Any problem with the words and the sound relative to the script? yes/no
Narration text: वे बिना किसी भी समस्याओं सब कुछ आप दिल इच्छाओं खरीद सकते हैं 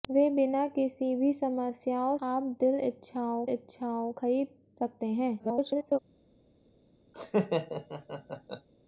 yes